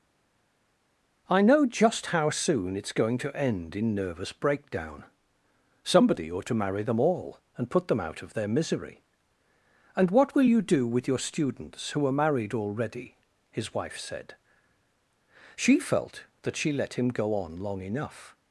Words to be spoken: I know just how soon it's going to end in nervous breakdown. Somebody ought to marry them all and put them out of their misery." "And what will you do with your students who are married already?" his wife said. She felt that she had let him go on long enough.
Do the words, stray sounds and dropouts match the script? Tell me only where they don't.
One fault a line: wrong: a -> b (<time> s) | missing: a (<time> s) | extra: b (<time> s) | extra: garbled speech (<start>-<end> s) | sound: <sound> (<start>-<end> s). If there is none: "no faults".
missing: had (16.7 s)